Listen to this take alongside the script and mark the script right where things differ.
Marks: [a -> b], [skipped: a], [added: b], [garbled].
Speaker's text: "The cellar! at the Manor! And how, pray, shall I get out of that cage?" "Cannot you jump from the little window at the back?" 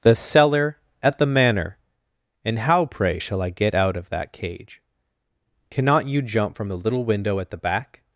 "The cellar! at the Manor! And how, pray, shall I get out of that cage?" "Cannot you jump from the little window at the back?"